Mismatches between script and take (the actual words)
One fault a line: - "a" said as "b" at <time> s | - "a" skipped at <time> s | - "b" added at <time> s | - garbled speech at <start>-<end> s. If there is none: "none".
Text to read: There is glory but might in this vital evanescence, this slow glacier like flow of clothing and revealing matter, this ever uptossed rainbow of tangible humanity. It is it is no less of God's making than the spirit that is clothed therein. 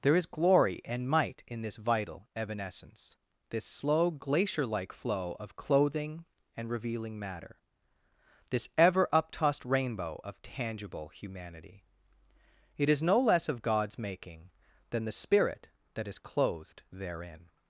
- "but" said as "and" at 0.8 s
- "it is" skipped at 13.0 s